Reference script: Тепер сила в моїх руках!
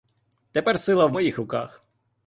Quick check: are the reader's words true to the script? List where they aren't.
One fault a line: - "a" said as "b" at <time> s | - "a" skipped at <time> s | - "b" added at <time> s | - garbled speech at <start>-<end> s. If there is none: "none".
none